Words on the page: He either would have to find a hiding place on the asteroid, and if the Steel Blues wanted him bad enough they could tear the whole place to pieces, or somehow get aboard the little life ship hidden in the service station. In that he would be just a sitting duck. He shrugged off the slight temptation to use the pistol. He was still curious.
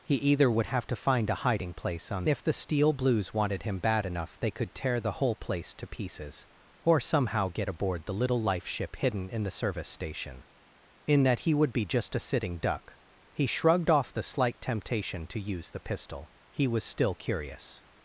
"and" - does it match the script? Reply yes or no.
no